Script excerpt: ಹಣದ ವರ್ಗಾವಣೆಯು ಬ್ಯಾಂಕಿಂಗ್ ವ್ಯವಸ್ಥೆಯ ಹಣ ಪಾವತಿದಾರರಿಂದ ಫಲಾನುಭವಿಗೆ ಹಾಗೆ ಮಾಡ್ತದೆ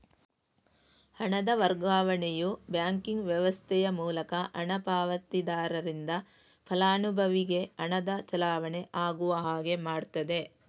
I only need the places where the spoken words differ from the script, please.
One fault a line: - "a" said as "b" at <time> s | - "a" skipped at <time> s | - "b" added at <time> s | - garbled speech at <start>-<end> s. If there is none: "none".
- "ಮೂಲಕ" added at 4.0 s
- "ಹಣದ ಚಲಾವಣೆ ಆಗುವ" added at 7.8 s